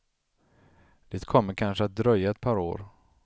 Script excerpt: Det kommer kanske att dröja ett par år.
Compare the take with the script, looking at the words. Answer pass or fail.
pass